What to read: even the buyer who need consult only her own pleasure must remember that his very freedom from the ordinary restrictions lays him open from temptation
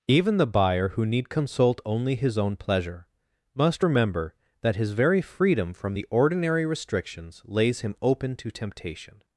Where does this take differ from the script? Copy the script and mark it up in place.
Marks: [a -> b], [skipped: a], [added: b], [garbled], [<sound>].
even the buyer who need consult only [her -> his] own pleasure must remember that his very freedom from the ordinary restrictions lays him open [from -> to] temptation